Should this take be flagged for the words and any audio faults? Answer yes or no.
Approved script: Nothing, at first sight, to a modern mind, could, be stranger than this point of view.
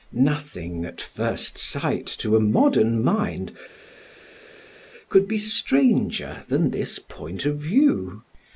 no